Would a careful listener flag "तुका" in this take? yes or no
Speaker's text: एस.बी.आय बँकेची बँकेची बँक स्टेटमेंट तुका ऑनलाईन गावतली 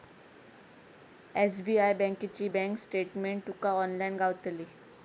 no